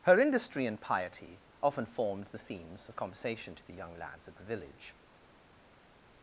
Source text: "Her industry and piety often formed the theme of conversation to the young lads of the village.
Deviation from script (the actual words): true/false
true